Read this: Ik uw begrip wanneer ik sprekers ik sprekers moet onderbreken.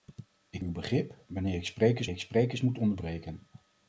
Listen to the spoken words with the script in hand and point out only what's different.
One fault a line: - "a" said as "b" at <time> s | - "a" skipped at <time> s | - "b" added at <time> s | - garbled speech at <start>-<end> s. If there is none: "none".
none